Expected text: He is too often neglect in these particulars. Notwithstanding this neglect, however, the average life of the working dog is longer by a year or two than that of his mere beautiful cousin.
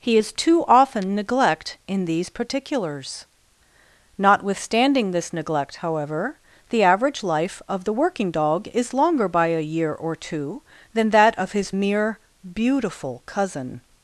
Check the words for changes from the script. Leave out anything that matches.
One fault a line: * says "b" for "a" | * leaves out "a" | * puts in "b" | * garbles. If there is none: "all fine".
all fine